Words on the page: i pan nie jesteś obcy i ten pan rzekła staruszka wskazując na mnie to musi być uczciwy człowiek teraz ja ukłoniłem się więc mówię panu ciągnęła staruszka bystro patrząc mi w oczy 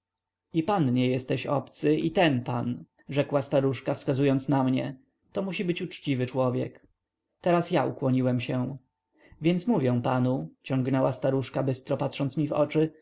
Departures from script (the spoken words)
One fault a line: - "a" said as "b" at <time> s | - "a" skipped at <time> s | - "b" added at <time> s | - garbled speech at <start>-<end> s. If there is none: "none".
none